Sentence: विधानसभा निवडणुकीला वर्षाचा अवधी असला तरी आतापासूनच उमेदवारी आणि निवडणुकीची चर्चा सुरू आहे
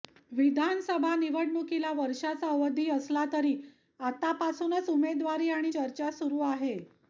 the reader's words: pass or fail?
fail